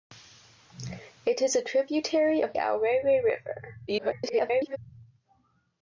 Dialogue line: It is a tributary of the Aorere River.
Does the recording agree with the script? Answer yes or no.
no